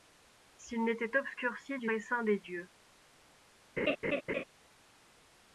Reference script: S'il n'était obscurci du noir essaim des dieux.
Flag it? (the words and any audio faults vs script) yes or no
yes